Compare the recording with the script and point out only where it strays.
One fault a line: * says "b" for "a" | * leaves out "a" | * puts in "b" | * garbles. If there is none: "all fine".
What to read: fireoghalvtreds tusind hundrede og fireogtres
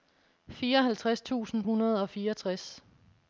all fine